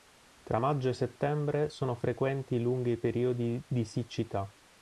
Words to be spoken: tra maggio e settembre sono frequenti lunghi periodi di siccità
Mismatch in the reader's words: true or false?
false